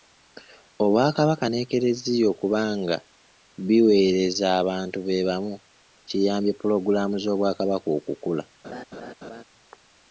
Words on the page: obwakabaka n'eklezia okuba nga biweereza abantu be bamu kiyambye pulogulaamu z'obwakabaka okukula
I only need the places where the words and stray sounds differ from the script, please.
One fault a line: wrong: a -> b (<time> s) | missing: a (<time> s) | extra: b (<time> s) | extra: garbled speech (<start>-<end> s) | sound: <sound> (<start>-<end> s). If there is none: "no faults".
sound: laugh (8.6-9.4 s)